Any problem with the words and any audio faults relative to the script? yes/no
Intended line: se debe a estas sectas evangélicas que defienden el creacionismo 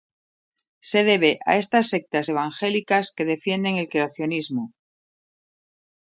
no